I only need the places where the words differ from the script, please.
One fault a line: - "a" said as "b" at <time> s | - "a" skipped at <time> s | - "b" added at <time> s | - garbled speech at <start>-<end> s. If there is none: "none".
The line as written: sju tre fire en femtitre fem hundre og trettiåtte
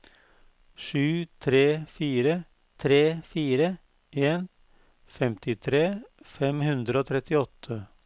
- "tre fire" added at 2.8 s